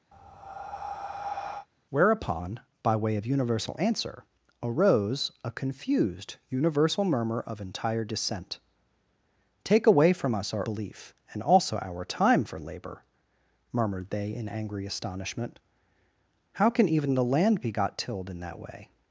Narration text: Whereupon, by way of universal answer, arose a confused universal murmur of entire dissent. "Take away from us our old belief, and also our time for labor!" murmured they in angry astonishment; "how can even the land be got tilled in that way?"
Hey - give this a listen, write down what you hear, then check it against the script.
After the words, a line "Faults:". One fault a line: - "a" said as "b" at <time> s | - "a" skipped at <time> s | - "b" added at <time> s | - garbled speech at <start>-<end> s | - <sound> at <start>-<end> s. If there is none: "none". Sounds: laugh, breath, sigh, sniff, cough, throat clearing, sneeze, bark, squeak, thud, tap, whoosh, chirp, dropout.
Whereupon, by way of universal answer, arose a confused universal murmur of entire dissent. "Take away from us our belief, and also our time for labor!" murmured they in angry astonishment; "how can even the land be got tilled in that way?"
Faults:
- breath at 0.1-1.7 s
- "old" skipped at 10.7 s